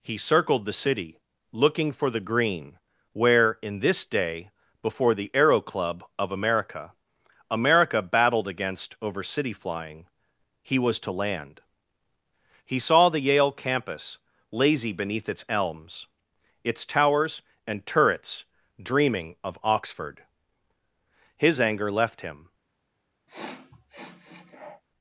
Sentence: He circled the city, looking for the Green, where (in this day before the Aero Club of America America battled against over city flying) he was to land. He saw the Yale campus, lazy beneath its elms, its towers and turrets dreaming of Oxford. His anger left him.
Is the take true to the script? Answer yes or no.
yes